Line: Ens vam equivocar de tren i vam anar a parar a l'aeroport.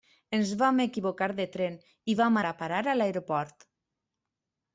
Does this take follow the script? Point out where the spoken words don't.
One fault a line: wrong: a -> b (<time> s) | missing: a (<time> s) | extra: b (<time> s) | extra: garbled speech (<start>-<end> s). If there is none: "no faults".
missing: anar (2.4 s)